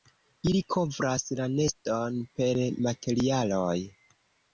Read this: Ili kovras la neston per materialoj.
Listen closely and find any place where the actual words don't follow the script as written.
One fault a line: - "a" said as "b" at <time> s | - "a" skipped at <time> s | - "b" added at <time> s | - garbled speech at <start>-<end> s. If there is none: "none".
none